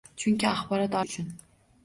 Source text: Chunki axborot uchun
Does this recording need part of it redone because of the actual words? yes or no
no